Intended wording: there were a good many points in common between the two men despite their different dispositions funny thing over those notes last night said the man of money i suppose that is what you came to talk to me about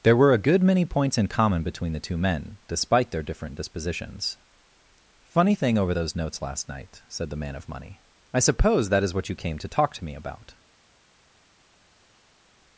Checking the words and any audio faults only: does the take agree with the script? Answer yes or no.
yes